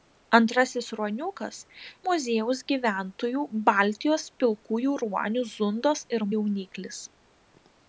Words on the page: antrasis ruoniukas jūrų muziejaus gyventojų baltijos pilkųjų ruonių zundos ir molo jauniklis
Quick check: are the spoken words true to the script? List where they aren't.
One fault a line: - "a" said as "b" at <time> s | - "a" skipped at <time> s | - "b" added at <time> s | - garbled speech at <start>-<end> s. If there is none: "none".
- "jūrų" skipped at 1.6 s
- "molo" skipped at 6.3 s